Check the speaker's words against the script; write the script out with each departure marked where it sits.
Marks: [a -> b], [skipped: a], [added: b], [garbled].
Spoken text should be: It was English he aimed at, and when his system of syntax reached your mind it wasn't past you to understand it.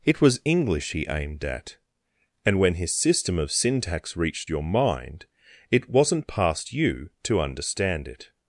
It was English he aimed at, and when his system of syntax reached your mind it wasn't past you to understand it.